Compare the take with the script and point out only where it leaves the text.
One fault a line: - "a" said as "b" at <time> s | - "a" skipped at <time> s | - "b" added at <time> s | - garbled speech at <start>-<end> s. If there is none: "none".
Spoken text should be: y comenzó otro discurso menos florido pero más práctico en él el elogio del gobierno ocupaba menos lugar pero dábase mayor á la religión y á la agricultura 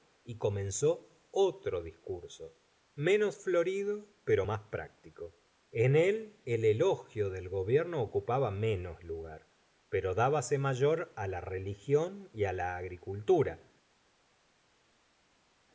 none